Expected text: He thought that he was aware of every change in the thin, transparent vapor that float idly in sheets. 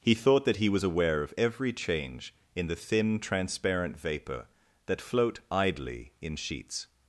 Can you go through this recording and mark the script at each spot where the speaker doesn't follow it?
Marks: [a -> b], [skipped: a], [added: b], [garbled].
He thought that he was aware of every change in the thin, transparent vapor that float idly in sheets.